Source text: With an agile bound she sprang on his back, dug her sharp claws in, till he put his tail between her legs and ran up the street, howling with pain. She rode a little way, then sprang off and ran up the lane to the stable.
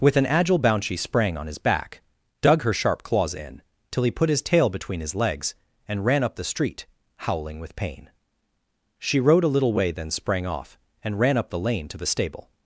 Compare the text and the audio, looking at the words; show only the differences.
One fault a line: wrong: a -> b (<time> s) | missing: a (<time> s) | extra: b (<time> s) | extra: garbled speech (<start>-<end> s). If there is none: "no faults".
wrong: her -> his (5.0 s)